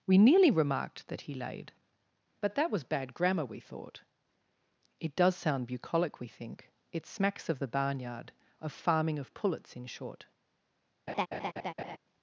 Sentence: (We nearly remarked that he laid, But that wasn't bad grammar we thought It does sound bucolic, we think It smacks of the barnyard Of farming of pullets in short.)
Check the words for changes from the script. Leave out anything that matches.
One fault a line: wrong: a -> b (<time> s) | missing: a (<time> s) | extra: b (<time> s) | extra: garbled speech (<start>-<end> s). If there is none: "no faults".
wrong: wasn't -> was (2.7 s)